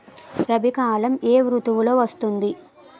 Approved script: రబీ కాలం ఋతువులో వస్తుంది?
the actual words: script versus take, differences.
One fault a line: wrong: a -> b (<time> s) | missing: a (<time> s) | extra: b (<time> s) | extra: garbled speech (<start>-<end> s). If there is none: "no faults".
extra: ఏ (1.2 s)